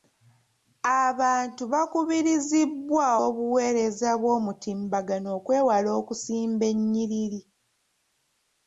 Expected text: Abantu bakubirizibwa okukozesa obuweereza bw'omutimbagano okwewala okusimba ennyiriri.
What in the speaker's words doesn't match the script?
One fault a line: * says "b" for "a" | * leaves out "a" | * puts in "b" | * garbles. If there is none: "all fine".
* leaves out "okukozesa"